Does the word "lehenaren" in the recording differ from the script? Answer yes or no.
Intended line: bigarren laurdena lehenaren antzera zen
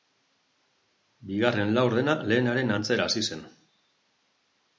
no